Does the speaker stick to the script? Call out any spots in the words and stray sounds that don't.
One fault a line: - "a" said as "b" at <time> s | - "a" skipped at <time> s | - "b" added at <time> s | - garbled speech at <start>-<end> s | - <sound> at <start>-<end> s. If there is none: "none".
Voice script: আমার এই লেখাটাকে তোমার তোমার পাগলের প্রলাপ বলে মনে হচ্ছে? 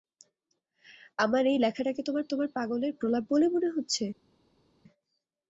none